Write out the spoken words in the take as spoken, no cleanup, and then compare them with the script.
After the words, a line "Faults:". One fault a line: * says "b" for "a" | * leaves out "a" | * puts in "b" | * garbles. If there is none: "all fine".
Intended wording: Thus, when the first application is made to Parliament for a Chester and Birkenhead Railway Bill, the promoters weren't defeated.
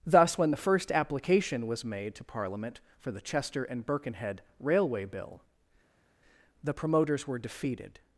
Thus, when the first application was made to Parliament for the Chester and Birkenhead Railway Bill, the promoters were defeated.
Faults:
* says "was" for "is"
* says "the" for "a"
* says "were" for "weren't"